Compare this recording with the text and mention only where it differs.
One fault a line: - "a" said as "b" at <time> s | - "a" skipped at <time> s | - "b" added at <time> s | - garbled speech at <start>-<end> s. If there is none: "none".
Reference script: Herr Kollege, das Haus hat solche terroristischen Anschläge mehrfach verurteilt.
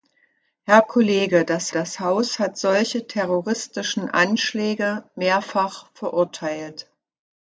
- "das" added at 1.7 s